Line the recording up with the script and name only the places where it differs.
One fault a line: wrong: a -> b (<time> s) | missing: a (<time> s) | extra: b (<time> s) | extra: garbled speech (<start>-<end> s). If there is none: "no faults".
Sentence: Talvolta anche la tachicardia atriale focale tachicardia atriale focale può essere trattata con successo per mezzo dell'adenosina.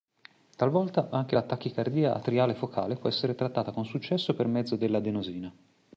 missing: tachicardia atriale focale (3.0 s)